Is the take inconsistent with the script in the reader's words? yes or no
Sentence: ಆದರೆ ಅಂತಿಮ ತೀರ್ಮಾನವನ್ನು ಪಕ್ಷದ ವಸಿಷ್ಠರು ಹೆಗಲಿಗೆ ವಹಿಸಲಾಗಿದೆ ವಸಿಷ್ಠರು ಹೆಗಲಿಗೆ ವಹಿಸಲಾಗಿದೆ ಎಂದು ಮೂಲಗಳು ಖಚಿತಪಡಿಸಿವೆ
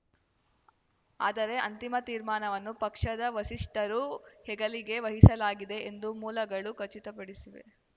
yes